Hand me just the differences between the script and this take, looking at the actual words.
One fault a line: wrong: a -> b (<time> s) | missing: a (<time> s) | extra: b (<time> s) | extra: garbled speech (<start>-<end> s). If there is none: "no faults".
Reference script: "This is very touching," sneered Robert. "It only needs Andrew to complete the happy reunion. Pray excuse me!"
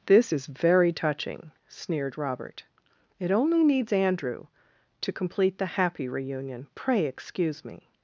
no faults